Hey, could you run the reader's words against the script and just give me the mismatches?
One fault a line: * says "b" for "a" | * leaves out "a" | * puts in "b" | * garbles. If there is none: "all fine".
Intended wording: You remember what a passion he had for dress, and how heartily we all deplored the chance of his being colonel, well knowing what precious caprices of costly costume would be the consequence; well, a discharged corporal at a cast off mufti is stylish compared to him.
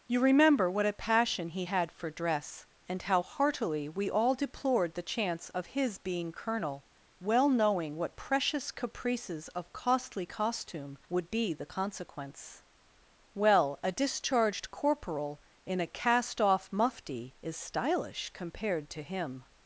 * says "in" for "at"